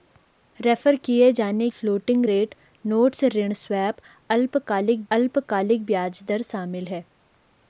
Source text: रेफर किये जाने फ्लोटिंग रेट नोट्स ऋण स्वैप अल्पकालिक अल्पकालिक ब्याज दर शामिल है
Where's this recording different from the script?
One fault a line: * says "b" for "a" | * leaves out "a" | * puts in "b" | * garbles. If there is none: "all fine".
all fine